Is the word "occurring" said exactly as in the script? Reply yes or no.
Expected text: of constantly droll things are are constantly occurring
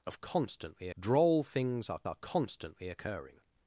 yes